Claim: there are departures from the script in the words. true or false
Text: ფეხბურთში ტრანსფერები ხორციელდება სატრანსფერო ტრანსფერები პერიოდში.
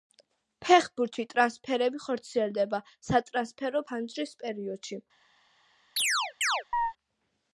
true